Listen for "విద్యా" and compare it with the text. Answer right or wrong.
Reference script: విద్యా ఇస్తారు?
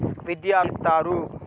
right